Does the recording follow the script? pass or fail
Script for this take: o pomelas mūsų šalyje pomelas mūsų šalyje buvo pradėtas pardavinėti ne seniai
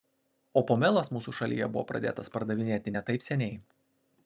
fail